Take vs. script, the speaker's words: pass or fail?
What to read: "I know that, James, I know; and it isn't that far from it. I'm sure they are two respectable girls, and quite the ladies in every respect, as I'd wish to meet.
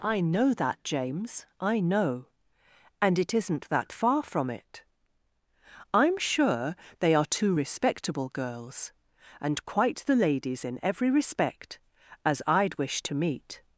pass